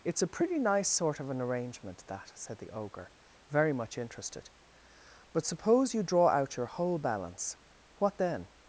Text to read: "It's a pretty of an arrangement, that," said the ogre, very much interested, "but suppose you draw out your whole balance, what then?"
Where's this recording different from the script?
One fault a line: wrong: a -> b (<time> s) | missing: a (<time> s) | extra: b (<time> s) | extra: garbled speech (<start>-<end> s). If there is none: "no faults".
extra: nice sort (0.6 s)